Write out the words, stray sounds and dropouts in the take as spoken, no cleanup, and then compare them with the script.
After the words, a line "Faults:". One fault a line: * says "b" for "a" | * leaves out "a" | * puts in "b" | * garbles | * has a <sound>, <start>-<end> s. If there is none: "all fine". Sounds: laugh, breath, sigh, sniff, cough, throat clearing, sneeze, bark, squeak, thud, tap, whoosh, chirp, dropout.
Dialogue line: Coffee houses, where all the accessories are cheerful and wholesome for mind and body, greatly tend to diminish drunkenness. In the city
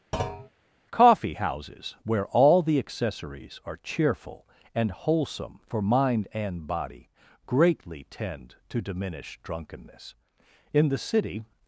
Coffee houses, where all the accessories are cheerful and wholesome for mind and body, greatly tend to diminish drunkenness. In the city
Faults:
* has a thud, 0.1-0.5 s